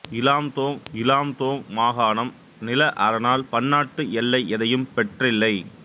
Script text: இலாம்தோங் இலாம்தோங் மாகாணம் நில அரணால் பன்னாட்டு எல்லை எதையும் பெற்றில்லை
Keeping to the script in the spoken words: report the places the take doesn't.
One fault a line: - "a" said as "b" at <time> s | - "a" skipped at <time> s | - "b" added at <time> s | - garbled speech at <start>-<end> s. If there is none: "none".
none